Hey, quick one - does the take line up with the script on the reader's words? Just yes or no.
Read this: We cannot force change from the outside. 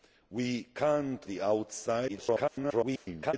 no